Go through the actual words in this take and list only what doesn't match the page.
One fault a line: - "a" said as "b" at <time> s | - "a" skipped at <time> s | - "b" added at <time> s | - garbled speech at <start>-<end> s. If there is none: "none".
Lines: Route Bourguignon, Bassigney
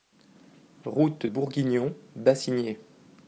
none